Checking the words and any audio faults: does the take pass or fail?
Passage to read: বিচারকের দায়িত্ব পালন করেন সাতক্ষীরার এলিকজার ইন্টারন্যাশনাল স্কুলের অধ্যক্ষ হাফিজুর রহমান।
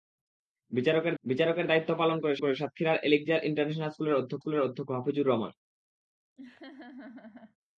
fail